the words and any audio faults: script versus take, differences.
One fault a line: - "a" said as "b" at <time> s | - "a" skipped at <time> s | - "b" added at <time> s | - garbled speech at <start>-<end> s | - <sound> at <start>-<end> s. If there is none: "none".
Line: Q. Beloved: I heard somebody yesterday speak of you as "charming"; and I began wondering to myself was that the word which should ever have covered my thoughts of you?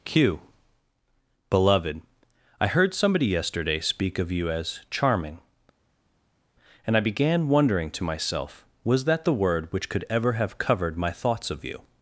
- "should" said as "could" at 9.9 s